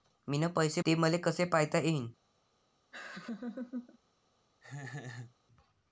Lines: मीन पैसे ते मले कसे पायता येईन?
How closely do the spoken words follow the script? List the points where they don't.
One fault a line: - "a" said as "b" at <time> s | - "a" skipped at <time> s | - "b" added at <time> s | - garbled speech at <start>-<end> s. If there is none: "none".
none